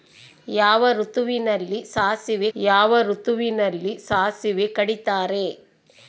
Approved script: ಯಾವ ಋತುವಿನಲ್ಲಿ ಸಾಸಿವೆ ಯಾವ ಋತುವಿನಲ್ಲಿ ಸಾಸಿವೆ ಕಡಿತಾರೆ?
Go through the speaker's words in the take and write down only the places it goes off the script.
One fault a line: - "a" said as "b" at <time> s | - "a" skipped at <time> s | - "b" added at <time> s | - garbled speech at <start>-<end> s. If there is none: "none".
none